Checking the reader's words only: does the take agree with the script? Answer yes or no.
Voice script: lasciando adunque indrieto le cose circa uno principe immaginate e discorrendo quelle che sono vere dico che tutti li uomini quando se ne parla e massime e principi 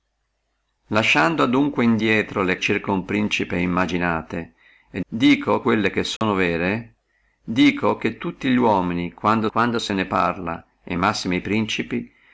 no